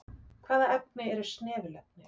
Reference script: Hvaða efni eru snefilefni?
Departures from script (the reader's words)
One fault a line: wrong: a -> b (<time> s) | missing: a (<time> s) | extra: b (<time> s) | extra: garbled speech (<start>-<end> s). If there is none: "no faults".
no faults